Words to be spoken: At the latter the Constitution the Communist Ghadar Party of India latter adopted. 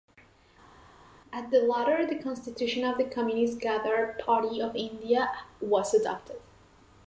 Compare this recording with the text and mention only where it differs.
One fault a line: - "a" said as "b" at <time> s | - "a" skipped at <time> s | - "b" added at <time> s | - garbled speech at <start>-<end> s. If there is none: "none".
- "of" added at 2.8 s
- "latter" said as "was" at 5.6 s